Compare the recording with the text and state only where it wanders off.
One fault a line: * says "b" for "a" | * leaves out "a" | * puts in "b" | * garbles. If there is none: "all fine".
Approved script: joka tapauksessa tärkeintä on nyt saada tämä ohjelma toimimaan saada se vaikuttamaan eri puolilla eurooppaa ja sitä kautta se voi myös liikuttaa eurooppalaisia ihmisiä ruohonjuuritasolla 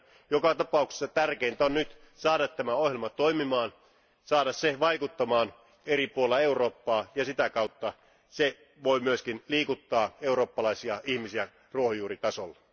all fine